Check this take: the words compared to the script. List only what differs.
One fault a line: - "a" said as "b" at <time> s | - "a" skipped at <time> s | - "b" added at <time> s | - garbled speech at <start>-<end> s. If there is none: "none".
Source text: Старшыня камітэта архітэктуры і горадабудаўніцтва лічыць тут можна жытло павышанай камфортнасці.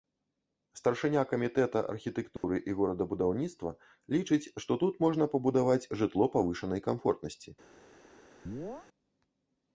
- "што" added at 4.7 s
- "пабудаваць" added at 5.3 s